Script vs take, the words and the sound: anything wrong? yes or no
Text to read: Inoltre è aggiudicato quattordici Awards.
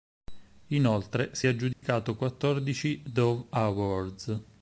yes